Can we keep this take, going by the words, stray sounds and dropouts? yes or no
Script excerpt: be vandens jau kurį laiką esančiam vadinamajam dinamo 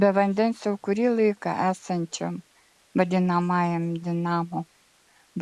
yes